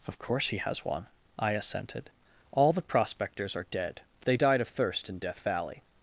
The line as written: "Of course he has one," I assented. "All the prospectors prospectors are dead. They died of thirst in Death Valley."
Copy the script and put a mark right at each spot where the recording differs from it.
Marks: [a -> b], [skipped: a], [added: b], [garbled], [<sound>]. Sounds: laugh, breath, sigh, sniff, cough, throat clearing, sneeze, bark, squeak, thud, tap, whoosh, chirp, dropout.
"Of course he has one," I assented. "All the prospectors [skipped: prospectors] are dead. They died of thirst in Death Valley."